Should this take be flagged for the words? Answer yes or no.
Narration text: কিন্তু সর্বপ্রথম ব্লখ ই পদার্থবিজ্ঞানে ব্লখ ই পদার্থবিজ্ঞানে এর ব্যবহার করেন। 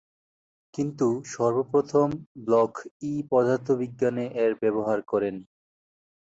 yes